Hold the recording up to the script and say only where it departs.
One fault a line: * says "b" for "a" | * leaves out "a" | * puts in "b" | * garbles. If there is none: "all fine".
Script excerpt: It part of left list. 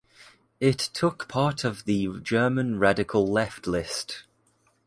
* puts in "took"
* puts in "the German radical"